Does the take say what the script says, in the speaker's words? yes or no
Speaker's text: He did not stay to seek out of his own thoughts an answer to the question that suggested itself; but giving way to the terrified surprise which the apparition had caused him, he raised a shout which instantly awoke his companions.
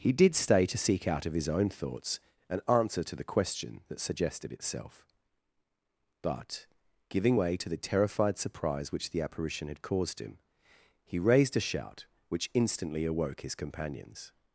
no